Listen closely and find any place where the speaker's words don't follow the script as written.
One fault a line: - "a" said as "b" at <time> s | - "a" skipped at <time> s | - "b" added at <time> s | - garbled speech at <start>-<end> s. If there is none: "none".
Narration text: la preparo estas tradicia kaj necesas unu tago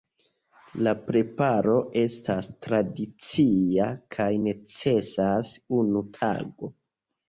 none